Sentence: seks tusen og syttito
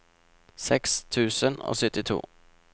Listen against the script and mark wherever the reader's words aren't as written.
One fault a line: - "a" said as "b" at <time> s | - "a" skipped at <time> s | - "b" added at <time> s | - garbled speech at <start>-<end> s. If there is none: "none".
none